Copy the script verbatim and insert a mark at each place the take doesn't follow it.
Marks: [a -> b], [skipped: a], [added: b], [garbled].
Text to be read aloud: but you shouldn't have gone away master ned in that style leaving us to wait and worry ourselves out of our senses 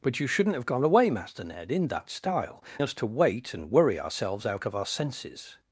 but you shouldn't have gone away master ned in that style [skipped: leaving] us to wait and worry ourselves out of our senses